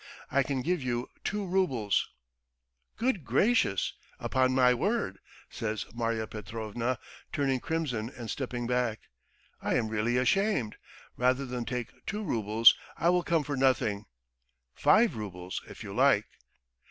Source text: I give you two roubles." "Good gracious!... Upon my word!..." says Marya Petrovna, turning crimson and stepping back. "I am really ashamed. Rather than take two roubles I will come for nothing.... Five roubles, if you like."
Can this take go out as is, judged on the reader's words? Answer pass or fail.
fail